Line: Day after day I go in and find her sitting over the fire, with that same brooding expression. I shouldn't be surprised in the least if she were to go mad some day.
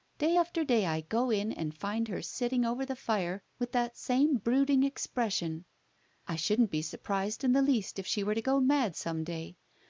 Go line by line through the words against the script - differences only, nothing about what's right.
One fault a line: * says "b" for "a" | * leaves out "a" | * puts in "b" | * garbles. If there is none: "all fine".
all fine